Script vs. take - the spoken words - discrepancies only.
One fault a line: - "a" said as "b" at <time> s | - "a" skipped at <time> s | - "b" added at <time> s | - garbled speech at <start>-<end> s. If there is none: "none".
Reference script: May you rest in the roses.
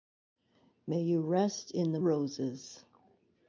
none